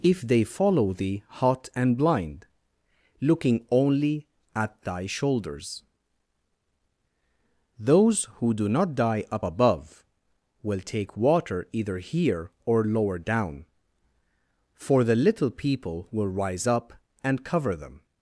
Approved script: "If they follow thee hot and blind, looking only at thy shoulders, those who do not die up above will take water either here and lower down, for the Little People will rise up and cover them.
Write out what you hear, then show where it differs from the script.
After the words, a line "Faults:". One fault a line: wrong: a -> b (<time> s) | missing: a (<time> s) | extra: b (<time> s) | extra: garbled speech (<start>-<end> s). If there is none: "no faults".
"If they follow thee hot and blind, looking only at thy shoulders, those who do not die up above will take water either here or lower down, for the Little People will rise up and cover them.
Faults:
wrong: and -> or (12.6 s)